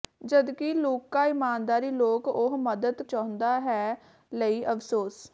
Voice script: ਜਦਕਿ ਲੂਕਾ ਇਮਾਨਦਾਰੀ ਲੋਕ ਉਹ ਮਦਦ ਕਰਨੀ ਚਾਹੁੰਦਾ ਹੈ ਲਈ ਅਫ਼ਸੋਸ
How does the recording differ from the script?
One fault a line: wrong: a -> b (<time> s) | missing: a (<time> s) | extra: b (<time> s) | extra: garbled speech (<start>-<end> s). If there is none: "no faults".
missing: ਕਰਨੀ (3.0 s)